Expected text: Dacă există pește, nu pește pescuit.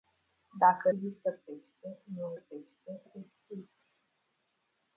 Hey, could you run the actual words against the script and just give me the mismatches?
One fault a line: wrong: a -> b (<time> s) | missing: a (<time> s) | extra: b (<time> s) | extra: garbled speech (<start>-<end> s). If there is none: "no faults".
no faults